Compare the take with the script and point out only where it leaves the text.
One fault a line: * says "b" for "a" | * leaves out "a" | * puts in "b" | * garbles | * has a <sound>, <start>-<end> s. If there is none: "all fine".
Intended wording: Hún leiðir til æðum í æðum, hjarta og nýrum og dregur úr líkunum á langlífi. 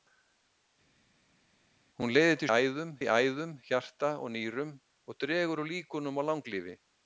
all fine